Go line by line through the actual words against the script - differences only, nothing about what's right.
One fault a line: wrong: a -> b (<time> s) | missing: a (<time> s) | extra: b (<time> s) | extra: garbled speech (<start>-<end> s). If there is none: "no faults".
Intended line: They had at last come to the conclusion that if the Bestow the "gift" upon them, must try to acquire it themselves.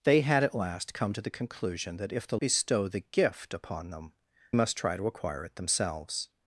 no faults